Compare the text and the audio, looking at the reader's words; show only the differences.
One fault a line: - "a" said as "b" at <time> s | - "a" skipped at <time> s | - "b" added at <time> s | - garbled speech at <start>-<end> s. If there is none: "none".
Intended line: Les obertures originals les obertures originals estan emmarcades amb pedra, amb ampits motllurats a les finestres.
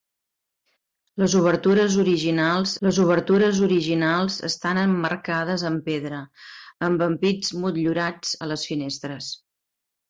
none